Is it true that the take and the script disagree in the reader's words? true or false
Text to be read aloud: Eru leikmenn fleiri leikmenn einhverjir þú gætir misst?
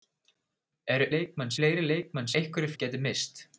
false